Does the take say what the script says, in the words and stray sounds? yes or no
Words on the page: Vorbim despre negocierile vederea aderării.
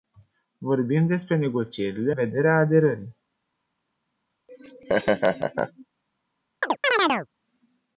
no